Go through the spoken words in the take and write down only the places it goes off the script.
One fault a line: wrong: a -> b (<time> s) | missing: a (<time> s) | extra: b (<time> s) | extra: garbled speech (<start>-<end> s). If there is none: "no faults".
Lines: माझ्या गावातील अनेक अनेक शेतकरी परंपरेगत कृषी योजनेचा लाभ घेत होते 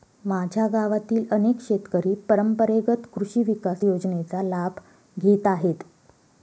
missing: अनेक (1.6 s)
extra: विकास (3.4 s)
wrong: होते -> आहेत (5.5 s)